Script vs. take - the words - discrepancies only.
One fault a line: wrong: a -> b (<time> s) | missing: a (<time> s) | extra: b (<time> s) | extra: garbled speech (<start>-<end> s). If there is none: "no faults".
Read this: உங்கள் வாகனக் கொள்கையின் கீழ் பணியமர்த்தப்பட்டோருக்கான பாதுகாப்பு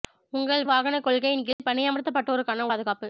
no faults